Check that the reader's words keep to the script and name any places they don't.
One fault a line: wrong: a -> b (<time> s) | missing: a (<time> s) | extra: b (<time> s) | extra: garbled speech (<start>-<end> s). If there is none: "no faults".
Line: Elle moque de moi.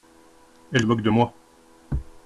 no faults